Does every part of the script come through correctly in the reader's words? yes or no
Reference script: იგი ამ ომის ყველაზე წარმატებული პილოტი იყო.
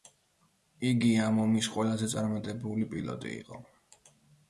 yes